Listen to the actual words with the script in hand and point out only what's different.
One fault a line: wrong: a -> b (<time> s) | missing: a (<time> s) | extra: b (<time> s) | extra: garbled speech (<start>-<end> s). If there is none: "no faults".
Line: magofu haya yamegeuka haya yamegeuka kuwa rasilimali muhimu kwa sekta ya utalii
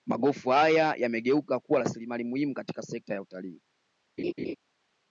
missing: haya yamegeuka (1.6 s)
wrong: kwa -> katika (2.5 s)